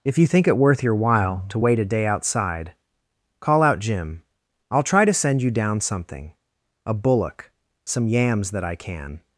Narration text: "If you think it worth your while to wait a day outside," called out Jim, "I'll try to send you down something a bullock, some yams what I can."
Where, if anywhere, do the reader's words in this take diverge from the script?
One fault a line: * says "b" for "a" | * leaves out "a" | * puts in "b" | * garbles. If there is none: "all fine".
* says "call" for "called"
* says "that" for "what"